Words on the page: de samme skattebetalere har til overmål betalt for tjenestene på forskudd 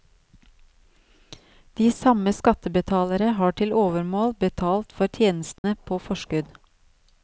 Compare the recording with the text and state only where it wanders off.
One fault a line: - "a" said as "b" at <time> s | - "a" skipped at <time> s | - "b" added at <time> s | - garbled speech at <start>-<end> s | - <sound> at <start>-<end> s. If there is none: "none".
- dropout at 5.6-5.6 s